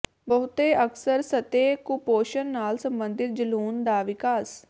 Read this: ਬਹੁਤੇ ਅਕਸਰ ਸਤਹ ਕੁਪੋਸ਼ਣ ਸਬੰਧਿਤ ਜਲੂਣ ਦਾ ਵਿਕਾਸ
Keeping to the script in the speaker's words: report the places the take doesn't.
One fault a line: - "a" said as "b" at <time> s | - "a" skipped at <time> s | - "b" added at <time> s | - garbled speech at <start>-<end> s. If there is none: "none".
- "ਨਾਲ" added at 2.5 s